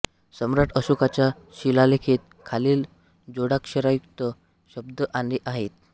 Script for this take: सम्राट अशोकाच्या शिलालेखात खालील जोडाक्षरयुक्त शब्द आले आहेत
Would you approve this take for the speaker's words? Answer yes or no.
yes